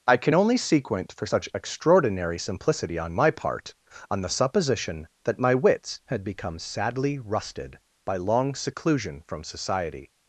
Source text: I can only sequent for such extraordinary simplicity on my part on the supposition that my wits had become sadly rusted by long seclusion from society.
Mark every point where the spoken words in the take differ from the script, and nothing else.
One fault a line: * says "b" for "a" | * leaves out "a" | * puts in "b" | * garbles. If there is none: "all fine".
all fine